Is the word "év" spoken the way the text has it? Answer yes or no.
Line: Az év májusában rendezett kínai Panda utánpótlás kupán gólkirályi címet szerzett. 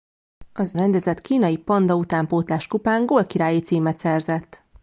no